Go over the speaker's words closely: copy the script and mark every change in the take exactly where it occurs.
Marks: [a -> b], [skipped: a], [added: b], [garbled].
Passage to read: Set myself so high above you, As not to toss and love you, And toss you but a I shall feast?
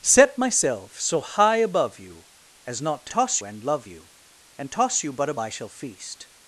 Set myself so high above you, As not to toss and love you, And toss you but a I shall feast?